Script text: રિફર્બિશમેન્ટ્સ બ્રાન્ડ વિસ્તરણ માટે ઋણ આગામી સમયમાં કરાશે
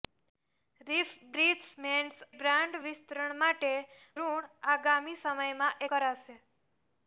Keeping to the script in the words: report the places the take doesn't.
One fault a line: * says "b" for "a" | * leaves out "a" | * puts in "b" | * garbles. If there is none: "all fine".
all fine